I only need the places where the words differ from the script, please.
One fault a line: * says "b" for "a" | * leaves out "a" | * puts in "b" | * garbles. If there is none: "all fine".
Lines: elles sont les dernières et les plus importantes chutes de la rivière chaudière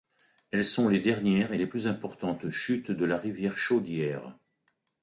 all fine